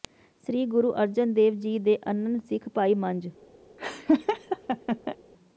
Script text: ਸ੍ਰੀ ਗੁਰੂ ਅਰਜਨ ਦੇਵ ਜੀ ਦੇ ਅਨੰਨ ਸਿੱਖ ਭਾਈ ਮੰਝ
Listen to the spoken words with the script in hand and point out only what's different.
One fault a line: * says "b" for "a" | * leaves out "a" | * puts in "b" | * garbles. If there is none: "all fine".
all fine